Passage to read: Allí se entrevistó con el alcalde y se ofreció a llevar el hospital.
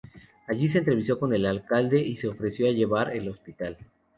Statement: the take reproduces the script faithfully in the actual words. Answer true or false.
true